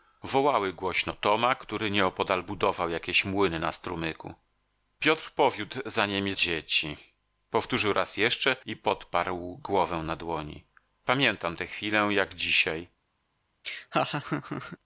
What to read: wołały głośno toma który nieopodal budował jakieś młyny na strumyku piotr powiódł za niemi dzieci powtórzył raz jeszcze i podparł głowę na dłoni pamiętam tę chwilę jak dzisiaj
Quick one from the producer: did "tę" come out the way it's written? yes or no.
yes